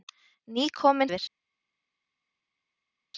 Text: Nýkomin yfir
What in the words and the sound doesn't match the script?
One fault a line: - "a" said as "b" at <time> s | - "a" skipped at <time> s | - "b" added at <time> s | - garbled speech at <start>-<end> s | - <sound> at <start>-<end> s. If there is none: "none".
none